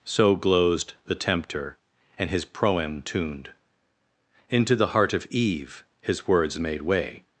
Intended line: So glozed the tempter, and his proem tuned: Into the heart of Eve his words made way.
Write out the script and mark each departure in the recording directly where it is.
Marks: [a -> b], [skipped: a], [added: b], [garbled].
So glozed the tempter, and his proem tuned: Into the heart of Eve his words made way.